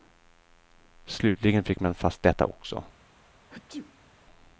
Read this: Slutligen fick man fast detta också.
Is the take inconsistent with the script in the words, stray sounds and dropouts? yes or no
yes